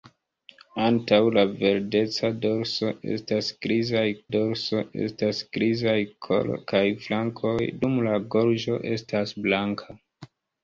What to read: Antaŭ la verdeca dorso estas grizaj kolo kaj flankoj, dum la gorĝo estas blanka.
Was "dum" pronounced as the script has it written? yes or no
yes